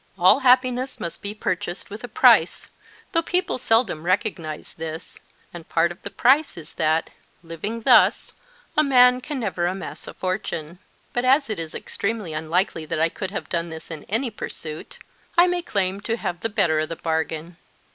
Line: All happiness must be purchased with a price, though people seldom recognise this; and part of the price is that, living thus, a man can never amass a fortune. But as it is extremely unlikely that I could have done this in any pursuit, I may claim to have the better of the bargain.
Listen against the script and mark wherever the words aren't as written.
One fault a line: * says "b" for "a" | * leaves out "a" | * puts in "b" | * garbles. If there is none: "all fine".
all fine